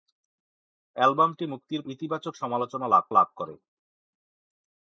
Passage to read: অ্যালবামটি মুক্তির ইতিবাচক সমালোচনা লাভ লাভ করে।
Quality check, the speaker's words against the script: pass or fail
pass